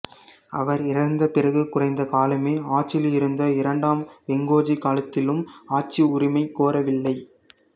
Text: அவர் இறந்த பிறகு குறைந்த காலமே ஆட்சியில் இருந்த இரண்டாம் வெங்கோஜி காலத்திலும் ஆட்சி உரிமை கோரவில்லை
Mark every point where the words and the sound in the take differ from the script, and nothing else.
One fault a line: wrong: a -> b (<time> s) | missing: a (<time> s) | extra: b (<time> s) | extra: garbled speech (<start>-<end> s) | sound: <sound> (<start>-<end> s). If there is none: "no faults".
no faults